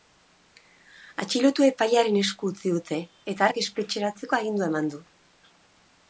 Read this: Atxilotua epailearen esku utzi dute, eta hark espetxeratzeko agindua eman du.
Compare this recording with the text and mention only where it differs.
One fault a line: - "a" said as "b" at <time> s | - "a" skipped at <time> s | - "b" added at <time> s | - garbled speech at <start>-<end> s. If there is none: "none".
none